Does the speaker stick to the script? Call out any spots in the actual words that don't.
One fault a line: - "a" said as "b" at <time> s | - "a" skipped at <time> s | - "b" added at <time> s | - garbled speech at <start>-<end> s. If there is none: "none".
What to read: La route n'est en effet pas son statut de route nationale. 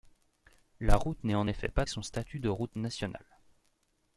none